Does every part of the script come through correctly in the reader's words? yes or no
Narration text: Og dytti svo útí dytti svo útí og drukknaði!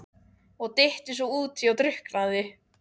no